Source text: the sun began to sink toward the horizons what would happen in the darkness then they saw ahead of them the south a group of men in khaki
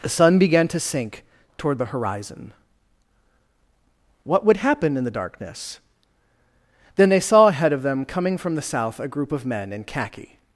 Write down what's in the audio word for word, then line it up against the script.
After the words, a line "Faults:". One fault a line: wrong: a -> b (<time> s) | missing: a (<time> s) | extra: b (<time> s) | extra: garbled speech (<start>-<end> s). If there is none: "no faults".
the sun began to sink toward the horizon what would happen in the darkness then they saw ahead of them coming from the south a group of men in khaki
Faults:
wrong: horizons -> horizon (1.9 s)
extra: coming from (8.1 s)